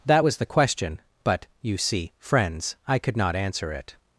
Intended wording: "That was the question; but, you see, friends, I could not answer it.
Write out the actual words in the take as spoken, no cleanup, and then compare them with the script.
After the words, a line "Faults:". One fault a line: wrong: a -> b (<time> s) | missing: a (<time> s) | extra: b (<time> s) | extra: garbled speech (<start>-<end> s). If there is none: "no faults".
"That was the question; but, you see, friends, I could not answer it.
Faults:
no faults